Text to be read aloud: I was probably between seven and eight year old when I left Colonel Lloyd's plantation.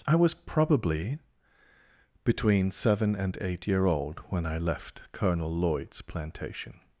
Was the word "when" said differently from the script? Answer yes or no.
no